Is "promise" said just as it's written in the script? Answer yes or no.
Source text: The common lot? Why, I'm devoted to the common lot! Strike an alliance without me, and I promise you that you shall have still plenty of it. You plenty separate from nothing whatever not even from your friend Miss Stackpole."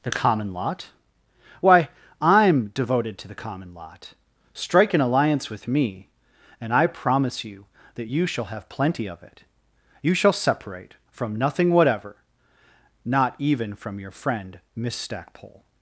yes